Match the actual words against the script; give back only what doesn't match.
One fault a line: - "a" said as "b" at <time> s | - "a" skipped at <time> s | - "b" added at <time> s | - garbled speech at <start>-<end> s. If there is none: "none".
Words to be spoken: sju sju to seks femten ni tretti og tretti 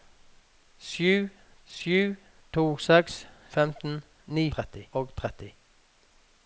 none